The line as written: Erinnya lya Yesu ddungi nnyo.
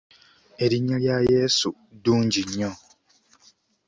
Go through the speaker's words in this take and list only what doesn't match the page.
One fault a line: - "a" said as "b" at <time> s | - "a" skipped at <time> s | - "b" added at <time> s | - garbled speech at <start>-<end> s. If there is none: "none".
none